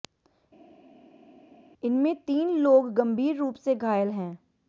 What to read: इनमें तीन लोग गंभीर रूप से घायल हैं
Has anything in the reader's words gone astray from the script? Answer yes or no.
no